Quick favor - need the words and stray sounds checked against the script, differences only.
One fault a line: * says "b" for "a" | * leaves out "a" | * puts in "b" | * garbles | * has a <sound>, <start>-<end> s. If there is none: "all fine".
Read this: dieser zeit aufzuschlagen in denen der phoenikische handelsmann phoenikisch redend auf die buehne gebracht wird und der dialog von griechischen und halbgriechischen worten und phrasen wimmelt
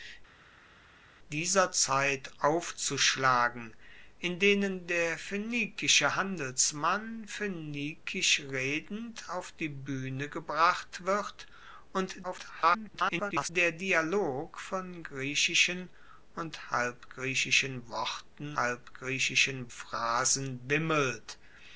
* garbles
* says "halbgriechischen" for "und"